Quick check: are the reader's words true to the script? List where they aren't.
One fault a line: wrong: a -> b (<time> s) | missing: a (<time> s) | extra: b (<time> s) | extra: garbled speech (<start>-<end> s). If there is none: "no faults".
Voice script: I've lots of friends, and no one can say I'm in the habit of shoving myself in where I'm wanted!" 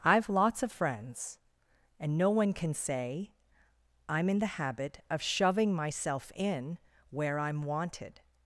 no faults